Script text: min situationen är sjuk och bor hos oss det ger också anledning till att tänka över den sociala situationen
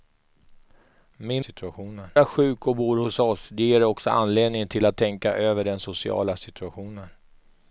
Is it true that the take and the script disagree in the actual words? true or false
false